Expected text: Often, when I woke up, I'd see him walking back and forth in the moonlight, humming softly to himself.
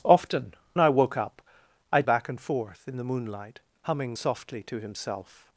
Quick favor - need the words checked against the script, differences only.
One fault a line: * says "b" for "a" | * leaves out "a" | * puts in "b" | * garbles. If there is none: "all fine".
* leaves out "when"
* leaves out "see him walking"